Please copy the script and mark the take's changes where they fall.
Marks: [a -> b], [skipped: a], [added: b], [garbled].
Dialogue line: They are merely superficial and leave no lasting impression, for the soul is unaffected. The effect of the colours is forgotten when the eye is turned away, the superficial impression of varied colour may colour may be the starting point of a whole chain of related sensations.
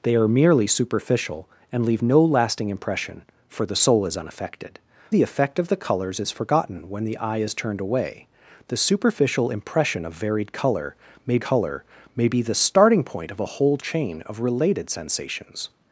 They are merely superficial and leave no lasting impression, for the soul is unaffected. The effect of the colours is forgotten when the eye is turned away, the superficial impression of varied colour may colour may be the starting point of a whole chain of related sensations.